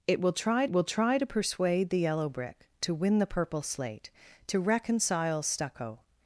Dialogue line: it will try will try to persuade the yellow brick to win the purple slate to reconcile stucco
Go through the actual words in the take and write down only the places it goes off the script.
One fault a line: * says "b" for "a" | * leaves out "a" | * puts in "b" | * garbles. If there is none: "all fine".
all fine